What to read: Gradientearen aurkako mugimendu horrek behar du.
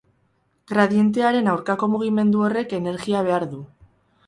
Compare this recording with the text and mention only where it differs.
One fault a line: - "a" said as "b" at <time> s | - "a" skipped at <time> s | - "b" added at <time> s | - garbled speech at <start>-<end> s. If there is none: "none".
- "energia" added at 2.8 s